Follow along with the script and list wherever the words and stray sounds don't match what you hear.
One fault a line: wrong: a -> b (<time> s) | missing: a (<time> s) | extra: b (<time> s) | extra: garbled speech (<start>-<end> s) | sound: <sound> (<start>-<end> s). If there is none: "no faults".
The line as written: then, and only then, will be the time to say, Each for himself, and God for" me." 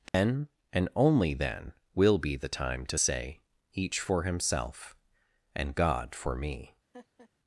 sound: dropout (0.1-0.1 s)
sound: laugh (6.9-7.3 s)